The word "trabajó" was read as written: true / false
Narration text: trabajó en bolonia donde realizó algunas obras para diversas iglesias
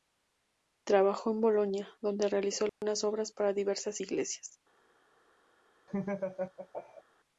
true